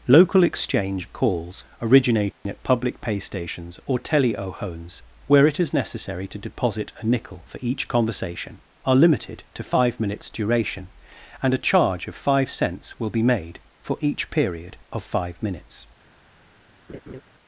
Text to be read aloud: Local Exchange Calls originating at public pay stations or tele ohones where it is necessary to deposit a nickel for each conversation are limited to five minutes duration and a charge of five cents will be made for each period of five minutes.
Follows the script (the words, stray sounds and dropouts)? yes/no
no